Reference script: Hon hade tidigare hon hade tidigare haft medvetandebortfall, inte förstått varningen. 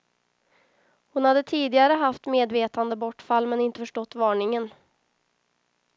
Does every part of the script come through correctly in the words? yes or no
no